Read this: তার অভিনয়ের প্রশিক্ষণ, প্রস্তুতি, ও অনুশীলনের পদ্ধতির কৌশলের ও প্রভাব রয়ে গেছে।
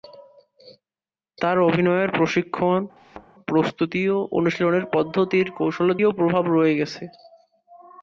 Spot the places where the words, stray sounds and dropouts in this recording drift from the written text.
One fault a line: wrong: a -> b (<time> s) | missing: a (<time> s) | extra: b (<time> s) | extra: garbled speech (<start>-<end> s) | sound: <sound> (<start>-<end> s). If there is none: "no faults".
sound: thud (3.0-3.3 s)